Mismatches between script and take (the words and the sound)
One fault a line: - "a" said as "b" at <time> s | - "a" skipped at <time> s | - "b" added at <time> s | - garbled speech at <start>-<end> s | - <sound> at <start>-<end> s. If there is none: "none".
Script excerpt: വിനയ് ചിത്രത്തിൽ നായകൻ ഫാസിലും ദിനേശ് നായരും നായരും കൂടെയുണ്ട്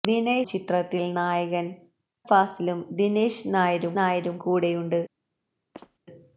- squeak at 5.7-6.0 s